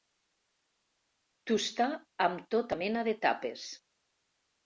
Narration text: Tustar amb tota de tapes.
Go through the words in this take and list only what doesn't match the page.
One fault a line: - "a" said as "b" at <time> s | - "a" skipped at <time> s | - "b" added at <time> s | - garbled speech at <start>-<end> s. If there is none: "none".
- "mena" added at 2.8 s